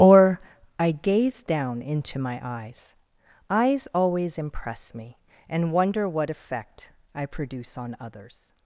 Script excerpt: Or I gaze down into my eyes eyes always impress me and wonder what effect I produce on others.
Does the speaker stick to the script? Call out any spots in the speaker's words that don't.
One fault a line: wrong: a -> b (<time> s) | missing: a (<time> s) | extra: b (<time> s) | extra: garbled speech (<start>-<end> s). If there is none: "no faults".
no faults